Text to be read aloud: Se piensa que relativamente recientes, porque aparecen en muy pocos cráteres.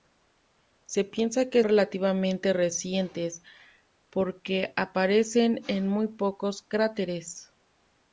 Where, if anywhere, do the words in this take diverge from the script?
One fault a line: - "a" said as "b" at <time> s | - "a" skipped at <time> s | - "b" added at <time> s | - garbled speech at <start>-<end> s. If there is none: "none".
none